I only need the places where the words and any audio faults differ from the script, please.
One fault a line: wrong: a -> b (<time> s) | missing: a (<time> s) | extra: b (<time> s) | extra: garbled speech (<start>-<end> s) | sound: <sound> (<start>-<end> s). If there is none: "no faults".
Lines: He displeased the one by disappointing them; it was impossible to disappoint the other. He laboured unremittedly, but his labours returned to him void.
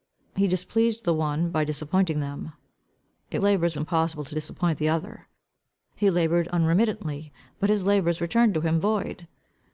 wrong: was -> labours (3.4 s)